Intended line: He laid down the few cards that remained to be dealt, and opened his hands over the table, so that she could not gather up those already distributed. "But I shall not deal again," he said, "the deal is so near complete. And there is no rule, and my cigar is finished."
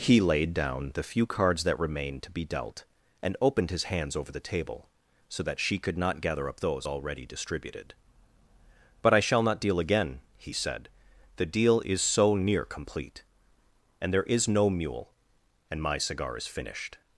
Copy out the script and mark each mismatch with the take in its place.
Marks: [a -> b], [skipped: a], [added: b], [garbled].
He laid down the few cards that remained to be dealt, and opened his hands over the table, so that she could not gather up those already distributed. "But I shall not deal again," he said, "the deal is so near complete. And there is no [rule, -> mule] and my cigar is finished."